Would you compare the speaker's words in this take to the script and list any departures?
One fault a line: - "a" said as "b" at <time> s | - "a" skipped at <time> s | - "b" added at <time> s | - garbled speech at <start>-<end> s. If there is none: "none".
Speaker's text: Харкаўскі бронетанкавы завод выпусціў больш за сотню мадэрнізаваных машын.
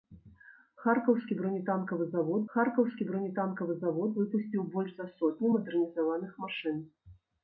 - "харкаўскі бронетанкавы завод" added at 2.6 s